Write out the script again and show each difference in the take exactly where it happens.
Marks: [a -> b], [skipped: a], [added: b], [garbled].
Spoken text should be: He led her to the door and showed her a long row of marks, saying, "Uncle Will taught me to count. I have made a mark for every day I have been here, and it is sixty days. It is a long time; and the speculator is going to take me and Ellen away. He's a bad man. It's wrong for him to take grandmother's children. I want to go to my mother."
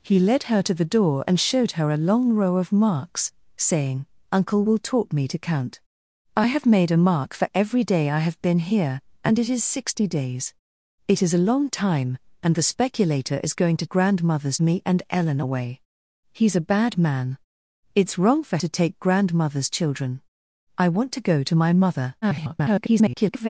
He led her to the door and showed her a long row of marks, saying, "Uncle Will taught me to count. I have made a mark for every day I have been here, and it is sixty days. It is a long time; and the speculator is going to [take -> grandmother's] me and Ellen away. He's a bad man. It's wrong for [skipped: him] to take grandmother's children. I want to go to my mother." [garbled]